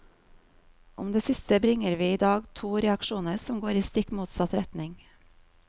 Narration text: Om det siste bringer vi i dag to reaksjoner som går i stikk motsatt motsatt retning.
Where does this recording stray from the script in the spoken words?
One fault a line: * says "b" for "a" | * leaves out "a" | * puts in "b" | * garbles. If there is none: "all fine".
* leaves out "motsatt"